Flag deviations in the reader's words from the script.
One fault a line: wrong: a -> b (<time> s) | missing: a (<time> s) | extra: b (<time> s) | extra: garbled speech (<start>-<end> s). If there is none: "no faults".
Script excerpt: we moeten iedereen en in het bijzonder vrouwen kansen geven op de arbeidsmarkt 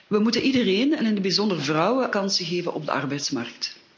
no faults